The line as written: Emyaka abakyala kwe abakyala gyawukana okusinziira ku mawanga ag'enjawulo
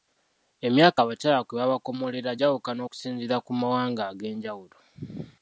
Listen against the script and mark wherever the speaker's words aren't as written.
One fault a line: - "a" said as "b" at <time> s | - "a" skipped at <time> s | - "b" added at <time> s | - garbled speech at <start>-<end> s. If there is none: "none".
- "abakyala" said as "babakomolera" at 1.6 s